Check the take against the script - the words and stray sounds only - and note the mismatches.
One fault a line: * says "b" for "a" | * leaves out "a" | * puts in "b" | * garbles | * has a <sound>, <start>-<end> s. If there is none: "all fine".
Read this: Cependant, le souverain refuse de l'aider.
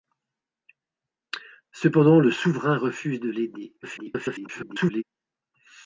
* garbles